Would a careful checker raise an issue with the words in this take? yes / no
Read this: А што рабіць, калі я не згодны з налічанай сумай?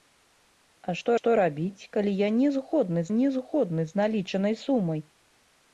yes